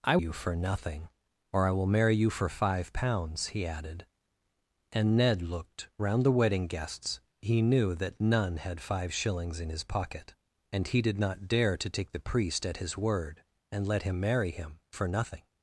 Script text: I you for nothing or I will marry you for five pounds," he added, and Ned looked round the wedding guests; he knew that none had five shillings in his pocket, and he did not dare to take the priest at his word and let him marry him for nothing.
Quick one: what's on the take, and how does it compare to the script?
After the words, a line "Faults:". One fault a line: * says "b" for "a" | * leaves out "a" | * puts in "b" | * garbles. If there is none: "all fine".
I you for nothing or I will marry you for five pounds," he added, and Ned looked round the wedding guests; he knew that none had five shillings in his pocket, and he did not dare to take the priest at his word and let him marry him for nothing.
Faults:
all fine